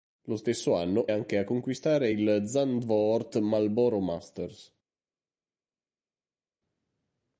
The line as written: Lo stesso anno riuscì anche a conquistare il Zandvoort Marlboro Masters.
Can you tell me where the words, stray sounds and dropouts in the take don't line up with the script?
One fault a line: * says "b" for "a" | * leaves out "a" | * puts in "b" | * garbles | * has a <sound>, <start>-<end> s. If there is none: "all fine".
* leaves out "riuscì"